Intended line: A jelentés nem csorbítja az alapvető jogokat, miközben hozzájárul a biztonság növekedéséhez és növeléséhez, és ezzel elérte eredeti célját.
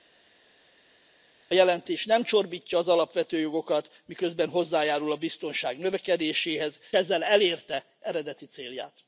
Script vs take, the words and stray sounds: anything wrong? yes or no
yes